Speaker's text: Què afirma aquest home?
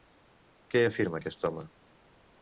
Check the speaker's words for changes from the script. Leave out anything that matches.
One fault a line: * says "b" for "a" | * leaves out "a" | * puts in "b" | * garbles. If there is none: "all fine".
all fine